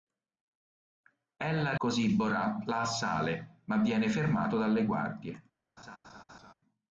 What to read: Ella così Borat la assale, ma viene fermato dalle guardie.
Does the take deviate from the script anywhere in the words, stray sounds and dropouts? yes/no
yes